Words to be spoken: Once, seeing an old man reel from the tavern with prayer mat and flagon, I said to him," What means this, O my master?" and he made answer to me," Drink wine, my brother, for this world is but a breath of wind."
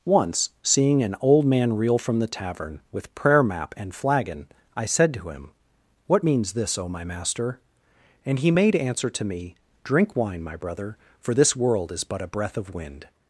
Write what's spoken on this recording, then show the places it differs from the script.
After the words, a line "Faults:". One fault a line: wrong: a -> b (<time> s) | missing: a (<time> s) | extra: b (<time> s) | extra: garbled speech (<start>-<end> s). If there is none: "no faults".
Once, seeing an old man reel from the tavern with prayer map and flagon, I said to him," What means this, O my master?" and he made answer to me," Drink wine, my brother, for this world is but a breath of wind."
Faults:
wrong: mat -> map (3.4 s)